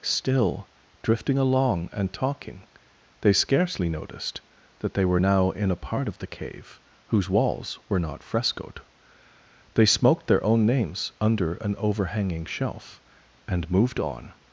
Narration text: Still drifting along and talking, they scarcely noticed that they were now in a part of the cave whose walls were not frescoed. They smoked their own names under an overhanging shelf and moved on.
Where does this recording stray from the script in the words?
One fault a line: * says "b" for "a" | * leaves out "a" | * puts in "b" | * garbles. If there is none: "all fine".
all fine